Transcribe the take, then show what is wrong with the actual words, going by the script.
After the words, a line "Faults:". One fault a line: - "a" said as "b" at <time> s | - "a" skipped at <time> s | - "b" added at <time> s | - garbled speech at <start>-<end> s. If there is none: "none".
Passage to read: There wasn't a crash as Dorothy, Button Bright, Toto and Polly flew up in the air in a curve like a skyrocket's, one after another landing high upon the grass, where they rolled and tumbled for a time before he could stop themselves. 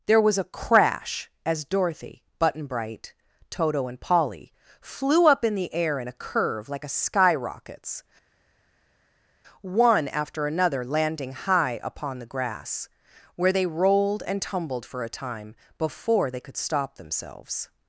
There was a crash as Dorothy, Button Bright, Toto and Polly flew up in the air in a curve like a skyrocket's, one after another landing high upon the grass, where they rolled and tumbled for a time before they could stop themselves.
Faults:
- "wasn't" said as "was" at 0.2 s
- "he" said as "they" at 16.3 s